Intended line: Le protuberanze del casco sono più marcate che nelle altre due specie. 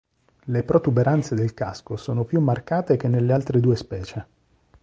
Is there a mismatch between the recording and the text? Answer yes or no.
no